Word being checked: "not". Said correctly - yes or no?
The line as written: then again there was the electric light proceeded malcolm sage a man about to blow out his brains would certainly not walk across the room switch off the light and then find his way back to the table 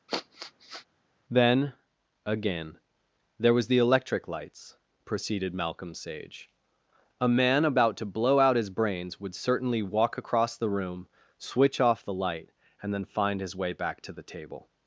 no